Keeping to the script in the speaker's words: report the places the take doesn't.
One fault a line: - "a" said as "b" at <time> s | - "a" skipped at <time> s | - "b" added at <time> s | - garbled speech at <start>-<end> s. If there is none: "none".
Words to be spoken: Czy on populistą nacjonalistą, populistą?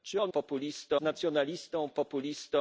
none